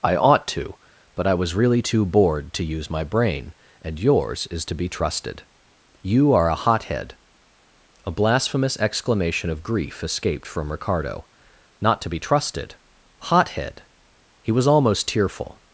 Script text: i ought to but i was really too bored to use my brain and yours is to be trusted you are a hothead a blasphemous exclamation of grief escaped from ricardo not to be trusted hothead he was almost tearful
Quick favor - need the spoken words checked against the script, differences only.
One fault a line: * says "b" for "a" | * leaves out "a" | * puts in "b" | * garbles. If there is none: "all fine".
all fine